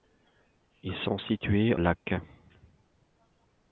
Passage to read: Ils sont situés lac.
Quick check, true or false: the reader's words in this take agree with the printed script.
true